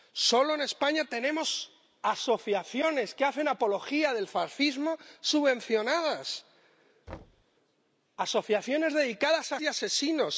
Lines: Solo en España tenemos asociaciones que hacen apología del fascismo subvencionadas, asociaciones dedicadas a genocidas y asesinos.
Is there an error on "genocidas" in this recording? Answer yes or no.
yes